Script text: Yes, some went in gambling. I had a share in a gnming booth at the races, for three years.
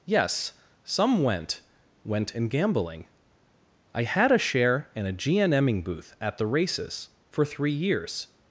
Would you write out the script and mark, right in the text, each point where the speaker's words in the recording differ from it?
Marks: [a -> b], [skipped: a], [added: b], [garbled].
Yes, some went [added: went] in gambling. I had a share in a gnming booth at the races, for three years.